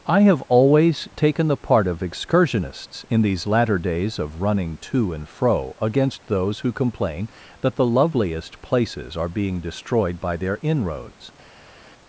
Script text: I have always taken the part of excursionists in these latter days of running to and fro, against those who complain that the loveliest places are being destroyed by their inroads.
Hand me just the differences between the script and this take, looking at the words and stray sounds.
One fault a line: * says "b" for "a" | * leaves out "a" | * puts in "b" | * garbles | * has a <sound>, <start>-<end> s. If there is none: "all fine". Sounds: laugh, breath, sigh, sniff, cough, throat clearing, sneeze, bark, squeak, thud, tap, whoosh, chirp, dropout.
all fine